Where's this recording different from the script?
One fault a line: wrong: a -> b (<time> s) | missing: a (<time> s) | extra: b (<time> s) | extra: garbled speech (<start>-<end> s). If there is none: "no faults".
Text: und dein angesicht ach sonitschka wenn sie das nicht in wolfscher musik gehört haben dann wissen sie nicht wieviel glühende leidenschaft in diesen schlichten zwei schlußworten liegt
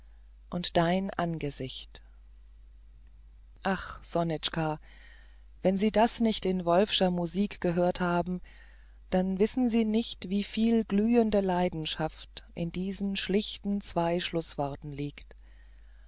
no faults